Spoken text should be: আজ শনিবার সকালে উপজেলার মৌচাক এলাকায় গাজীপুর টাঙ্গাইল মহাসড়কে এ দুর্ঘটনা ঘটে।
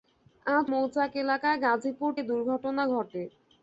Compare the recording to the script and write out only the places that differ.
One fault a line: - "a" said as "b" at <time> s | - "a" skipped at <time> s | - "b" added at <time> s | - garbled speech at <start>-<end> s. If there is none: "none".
- "শনিবার সকালে উপজেলার" skipped at 0.7 s
- "টাঙ্গাইল মহাসড়কে" skipped at 2.1 s